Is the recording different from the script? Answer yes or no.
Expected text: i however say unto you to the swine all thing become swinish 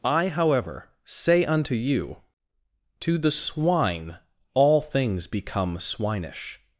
yes